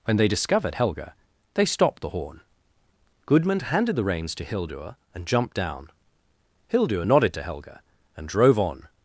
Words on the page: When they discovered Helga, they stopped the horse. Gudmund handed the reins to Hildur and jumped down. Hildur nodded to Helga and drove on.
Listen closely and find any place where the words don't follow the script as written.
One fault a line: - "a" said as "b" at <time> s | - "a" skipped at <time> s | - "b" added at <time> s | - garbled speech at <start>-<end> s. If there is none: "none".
- "horse" said as "horn" at 2.1 s